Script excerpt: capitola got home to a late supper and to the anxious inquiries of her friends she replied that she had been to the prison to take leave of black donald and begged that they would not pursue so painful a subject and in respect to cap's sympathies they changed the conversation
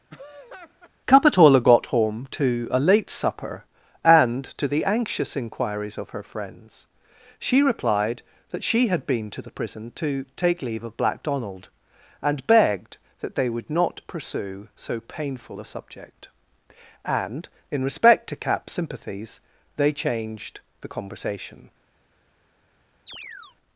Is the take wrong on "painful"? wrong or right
right